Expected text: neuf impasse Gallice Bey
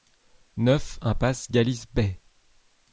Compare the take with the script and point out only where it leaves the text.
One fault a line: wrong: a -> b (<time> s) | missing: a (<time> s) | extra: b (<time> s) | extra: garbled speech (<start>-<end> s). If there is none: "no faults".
no faults